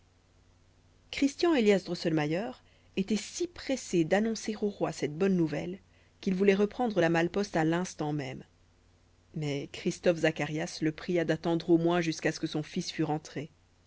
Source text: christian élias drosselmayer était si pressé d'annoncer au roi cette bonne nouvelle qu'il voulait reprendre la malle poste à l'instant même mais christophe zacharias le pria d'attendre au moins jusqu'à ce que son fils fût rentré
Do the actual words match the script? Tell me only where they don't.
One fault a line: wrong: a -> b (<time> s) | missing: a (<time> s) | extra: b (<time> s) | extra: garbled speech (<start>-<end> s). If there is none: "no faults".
no faults